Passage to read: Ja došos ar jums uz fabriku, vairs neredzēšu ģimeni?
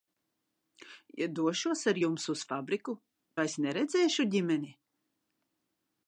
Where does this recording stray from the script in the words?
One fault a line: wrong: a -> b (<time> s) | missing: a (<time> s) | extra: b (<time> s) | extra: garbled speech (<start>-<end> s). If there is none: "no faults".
no faults